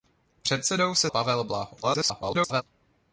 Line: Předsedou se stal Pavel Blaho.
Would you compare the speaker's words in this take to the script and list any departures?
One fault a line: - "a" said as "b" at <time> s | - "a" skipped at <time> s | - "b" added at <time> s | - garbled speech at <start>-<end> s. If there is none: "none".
- "stal" skipped at 1.1 s
- garbled speech at 1.8-2.6 s